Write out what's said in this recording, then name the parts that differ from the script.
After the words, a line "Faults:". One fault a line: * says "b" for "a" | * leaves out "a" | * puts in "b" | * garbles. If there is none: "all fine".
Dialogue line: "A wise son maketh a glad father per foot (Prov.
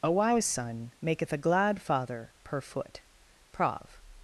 "A wise son maketh a glad father per foot (Prov.
Faults:
all fine